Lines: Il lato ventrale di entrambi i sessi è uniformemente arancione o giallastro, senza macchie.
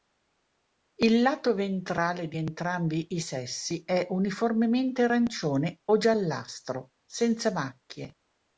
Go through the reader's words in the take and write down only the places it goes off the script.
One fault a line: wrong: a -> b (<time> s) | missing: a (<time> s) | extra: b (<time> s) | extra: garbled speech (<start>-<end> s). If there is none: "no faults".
no faults